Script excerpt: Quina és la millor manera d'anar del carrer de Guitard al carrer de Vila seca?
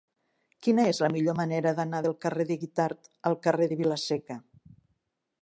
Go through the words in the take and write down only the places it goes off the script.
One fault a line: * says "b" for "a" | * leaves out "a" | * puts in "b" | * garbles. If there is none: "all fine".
all fine